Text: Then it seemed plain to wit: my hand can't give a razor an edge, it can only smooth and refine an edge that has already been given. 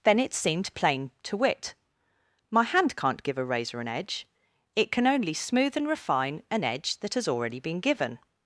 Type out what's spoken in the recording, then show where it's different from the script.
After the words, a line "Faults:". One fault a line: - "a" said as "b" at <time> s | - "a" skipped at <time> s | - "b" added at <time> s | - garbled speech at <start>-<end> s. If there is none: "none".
Then it seemed plain to wit: my hand can't give a razor an edge, it can only smooth and refine an edge that has already been given.
Faults:
none